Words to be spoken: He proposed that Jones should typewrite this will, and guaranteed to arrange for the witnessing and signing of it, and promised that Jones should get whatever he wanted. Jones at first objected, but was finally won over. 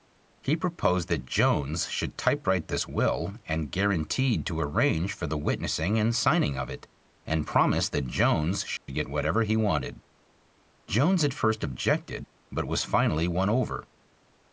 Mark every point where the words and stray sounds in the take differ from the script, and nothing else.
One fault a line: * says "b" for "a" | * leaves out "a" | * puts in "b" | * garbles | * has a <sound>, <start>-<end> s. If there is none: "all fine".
* has a dropout, 8.8-8.9 s